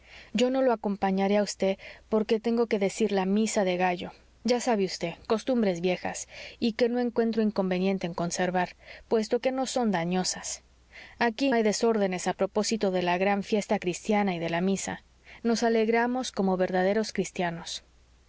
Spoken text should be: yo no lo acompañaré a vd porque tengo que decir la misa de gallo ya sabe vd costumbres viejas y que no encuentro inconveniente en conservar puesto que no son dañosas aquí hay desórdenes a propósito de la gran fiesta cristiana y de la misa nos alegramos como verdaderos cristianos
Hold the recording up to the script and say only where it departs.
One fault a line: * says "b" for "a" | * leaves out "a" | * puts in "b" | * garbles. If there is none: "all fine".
all fine